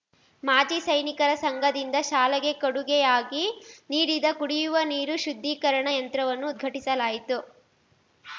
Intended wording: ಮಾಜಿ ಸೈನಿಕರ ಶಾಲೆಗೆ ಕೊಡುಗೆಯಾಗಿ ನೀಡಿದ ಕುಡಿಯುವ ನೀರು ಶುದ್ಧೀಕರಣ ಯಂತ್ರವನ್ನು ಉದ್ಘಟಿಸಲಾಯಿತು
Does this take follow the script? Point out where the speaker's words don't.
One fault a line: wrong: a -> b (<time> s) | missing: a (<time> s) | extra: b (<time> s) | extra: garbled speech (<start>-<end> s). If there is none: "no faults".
extra: ಸಂಘದಿಂದ (1.4 s)